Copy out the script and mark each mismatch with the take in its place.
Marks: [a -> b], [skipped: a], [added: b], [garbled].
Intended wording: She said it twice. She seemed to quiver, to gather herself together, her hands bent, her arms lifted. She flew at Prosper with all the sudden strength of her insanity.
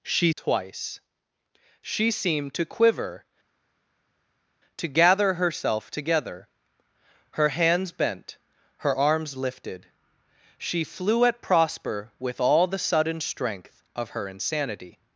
She [skipped: said it] twice. She seemed to quiver, to gather herself together, her hands bent, her arms lifted. She flew at Prosper with all the sudden strength of her insanity.